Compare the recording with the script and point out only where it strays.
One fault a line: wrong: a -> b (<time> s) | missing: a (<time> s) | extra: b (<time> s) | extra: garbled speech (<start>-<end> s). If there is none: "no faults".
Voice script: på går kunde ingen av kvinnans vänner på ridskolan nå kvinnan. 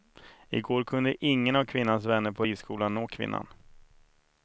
wrong: på -> I (0.5 s)